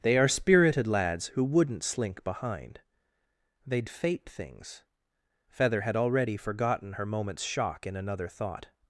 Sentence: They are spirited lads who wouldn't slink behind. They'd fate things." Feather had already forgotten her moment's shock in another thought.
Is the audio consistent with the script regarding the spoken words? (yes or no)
yes